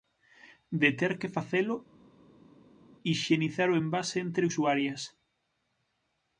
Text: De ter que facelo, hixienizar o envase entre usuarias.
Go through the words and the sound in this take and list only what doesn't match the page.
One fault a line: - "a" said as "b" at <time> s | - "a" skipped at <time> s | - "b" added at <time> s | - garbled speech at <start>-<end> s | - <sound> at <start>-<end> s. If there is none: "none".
none